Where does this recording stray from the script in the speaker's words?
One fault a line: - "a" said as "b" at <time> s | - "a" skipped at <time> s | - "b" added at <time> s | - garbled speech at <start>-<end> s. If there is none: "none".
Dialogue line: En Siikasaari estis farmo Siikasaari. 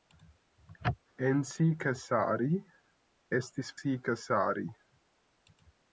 - "farmo" skipped at 3.7 s